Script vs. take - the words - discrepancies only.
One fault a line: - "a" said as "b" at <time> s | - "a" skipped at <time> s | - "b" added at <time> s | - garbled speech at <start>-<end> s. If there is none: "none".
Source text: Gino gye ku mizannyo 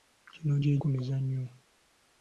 none